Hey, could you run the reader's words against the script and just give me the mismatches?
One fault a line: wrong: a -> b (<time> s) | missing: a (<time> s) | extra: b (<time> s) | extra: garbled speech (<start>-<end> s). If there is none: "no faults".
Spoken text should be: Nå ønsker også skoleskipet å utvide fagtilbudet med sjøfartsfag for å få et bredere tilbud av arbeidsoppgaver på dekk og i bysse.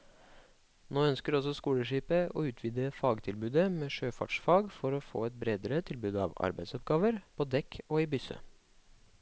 no faults